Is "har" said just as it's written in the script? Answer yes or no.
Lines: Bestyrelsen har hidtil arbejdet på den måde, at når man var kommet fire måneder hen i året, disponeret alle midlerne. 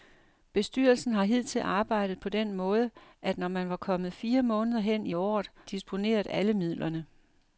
yes